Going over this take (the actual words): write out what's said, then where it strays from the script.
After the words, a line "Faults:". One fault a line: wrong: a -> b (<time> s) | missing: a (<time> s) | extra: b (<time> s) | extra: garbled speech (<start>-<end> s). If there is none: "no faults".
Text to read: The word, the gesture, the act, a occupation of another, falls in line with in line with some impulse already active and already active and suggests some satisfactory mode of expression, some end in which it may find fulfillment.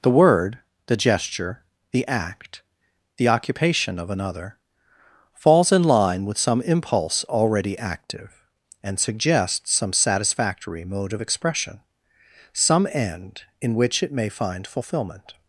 The word, the gesture, the act, the occupation of another, falls in line with some impulse already active and suggests some satisfactory mode of expression, some end in which it may find fulfillment.
Faults:
wrong: a -> the (3.2 s)
missing: in line with (6.4 s)
missing: already active and (9.0 s)